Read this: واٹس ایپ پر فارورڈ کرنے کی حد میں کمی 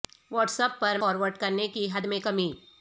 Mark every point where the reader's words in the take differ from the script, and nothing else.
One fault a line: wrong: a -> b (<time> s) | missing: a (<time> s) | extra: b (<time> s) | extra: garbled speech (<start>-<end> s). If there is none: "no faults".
no faults